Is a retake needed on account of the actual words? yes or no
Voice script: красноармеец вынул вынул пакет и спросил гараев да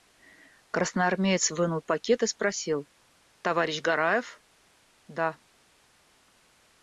yes